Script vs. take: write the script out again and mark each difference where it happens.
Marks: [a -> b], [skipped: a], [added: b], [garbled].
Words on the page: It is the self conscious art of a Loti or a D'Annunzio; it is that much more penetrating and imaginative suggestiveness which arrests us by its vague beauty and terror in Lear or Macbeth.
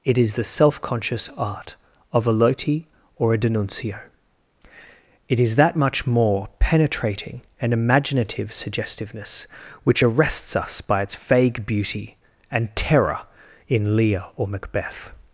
It is the self conscious art of a Loti or a D'Annunzio; it is that much more penetrating and imaginative suggestiveness which arrests us by its vague beauty and terror in Lear or Macbeth.